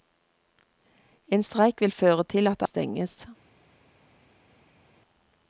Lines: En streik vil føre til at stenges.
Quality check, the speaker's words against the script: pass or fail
pass